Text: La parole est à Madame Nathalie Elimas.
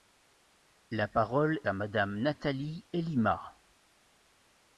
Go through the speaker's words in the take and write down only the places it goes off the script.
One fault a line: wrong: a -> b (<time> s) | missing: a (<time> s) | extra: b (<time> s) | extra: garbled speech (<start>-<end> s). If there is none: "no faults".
missing: est (1.6 s)